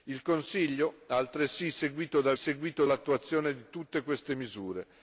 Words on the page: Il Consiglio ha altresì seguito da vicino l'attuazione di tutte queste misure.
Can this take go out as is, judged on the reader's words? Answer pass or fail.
fail